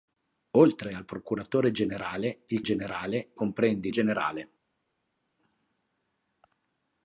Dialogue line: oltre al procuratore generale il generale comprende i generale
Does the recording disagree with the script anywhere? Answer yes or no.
no